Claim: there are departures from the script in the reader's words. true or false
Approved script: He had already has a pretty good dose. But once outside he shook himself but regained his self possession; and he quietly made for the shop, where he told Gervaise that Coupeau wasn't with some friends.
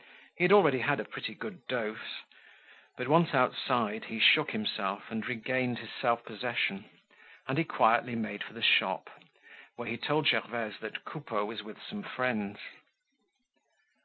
true